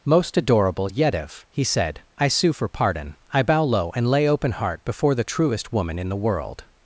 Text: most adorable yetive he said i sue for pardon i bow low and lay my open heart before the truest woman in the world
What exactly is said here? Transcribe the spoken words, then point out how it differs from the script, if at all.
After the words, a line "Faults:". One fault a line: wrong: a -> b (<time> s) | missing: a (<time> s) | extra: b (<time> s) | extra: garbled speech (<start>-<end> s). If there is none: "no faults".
most adorable yetive he said i sue for pardon i bow low and lay open heart before the truest woman in the world
Faults:
missing: my (4.3 s)